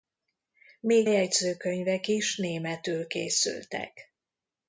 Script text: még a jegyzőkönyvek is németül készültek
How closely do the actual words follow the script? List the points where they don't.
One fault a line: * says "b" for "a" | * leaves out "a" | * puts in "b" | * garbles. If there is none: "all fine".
* leaves out "a"